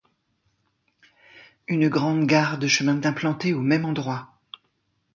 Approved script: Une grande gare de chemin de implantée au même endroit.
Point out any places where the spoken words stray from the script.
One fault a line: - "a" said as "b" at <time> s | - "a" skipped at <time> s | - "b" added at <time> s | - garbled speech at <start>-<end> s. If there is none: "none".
none